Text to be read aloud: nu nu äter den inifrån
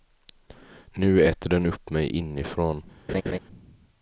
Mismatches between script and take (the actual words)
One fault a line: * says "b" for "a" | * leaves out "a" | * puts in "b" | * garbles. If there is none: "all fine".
* leaves out "nu"
* puts in "upp mig"